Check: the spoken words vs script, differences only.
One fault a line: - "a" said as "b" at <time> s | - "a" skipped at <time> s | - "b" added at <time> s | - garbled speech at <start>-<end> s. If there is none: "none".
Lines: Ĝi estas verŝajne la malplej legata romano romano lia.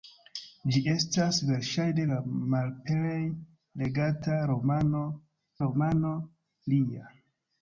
none